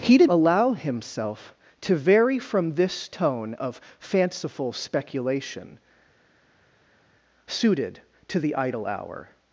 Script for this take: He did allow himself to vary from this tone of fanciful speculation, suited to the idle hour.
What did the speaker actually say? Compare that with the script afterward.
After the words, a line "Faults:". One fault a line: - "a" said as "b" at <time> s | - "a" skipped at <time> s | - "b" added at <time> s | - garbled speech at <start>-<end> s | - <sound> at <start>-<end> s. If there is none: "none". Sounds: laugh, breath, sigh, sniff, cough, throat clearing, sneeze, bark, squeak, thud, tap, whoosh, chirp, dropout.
He did allow himself to vary from this tone of fanciful speculation, suited to the idle hour.
Faults:
none